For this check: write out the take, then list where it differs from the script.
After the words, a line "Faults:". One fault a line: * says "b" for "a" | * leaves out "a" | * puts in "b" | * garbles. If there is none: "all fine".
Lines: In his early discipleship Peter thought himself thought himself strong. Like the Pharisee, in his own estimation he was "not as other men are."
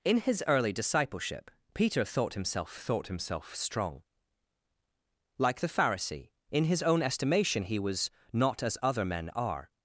In his early discipleship Peter thought himself thought himself strong. Like the Pharisee, in his own estimation he was "not as other men are."
Faults:
all fine